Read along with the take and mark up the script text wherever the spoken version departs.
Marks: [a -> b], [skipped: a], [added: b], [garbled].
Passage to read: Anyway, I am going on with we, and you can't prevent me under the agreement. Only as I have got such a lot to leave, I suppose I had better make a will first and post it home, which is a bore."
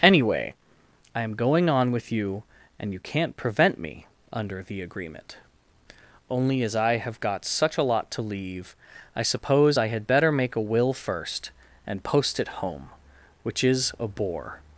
Anyway, I am going on with [we, -> you] and you can't prevent me under the agreement. Only as I have got such a lot to leave, I suppose I had better make a will first and post it home, which is a bore."